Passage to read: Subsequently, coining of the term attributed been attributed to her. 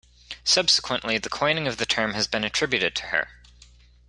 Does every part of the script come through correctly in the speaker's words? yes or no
no